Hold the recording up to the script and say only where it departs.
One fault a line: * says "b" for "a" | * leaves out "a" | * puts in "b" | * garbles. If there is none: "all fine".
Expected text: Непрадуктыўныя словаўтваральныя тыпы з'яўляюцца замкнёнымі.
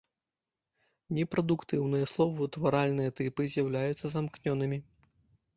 all fine